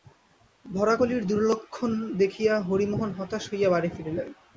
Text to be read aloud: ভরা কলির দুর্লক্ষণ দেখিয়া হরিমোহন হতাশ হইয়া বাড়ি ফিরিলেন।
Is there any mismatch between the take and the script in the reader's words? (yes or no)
no